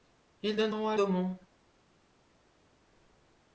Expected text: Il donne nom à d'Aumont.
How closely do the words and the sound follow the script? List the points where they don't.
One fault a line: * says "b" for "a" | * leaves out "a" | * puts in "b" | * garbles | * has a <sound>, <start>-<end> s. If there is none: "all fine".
all fine